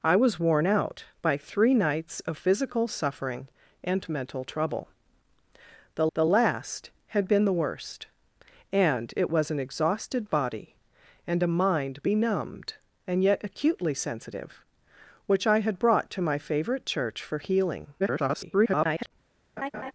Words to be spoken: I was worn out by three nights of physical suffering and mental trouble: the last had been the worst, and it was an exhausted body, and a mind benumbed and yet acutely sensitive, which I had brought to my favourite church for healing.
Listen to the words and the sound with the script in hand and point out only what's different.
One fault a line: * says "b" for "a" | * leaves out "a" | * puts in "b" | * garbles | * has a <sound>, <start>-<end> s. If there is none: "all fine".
* puts in "the"
* garbles
* has a laugh, 19.6-19.9 s